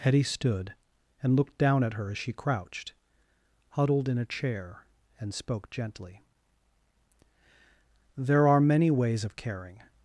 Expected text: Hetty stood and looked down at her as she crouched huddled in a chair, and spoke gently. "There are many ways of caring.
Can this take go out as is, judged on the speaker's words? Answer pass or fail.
pass